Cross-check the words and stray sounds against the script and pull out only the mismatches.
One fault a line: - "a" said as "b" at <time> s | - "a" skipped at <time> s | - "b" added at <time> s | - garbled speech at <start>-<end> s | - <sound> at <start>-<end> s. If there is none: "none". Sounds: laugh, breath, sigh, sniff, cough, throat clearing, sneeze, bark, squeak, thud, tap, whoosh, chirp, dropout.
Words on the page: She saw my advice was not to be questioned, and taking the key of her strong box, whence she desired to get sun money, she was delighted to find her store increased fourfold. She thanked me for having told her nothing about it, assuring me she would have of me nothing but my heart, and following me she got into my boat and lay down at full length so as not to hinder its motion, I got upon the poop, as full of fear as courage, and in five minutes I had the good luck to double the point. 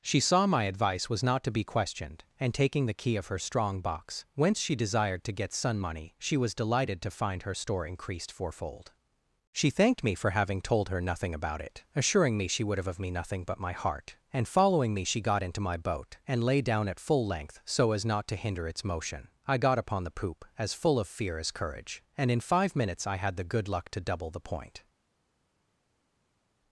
none